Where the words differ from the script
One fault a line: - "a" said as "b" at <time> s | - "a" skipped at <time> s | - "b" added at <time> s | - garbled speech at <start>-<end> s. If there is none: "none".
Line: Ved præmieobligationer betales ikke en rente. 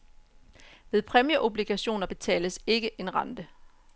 none